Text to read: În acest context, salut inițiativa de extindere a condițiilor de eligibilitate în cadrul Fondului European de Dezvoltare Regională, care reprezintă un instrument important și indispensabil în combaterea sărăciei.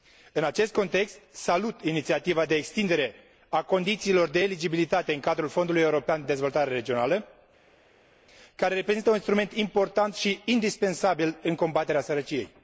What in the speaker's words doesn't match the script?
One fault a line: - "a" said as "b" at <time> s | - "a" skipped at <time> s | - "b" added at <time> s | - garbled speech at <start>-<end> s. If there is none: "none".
none